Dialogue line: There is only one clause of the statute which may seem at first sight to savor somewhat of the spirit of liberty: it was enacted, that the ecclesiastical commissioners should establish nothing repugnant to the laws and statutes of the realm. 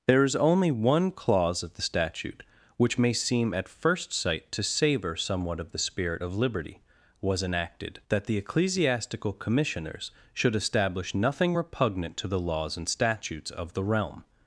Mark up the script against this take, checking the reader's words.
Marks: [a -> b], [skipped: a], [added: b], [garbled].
There is only one clause of the statute which may seem at first sight to savor somewhat of the spirit of liberty: [skipped: it] was enacted, that the ecclesiastical commissioners should establish nothing repugnant to the laws and statutes of the realm.